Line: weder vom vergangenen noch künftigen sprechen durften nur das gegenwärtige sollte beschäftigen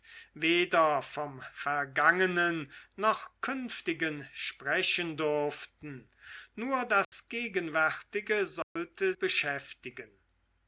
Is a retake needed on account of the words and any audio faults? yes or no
yes